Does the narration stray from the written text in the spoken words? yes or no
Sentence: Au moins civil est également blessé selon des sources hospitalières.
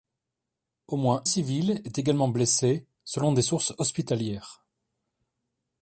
no